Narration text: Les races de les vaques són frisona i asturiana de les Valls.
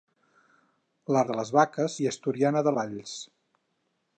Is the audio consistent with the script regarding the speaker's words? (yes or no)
no